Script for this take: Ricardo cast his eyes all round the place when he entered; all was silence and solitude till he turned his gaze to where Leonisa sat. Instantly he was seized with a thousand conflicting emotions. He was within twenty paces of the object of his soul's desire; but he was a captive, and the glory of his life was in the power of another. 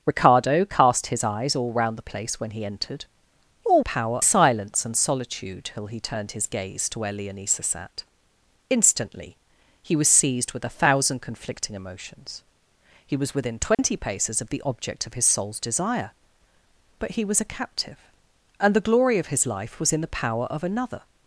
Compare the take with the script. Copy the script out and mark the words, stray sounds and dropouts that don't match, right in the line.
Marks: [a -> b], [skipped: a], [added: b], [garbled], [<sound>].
Ricardo cast his eyes all round the place when he entered; all [was -> power] silence and solitude till he turned his gaze to where Leonisa sat. Instantly he was seized with a thousand conflicting emotions. He was within twenty [dropout] paces of the object of his soul's desire; but he was a captive, and the glory of his life was in the power of another.